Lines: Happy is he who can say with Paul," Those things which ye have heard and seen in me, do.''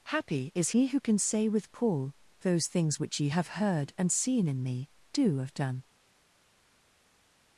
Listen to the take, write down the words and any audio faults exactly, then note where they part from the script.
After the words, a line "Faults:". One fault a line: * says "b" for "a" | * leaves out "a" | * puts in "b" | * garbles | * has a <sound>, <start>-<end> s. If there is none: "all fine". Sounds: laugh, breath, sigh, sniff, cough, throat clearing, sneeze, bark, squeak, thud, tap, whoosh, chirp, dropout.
Happy is he who can say with Paul," Those things which ye have heard and seen in me, do.'' have done
Faults:
* puts in "have done"